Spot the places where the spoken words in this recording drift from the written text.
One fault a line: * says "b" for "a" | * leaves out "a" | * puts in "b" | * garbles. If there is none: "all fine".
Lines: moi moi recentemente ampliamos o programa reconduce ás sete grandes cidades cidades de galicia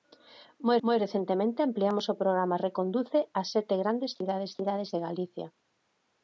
all fine